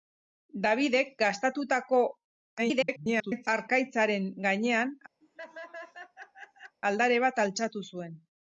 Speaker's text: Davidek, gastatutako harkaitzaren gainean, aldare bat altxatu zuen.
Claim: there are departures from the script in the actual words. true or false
true